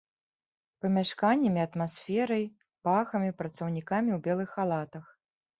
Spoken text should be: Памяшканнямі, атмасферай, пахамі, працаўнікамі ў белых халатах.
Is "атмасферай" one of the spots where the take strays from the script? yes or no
no